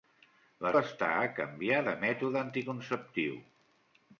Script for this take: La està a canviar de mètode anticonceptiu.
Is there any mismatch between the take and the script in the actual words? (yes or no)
no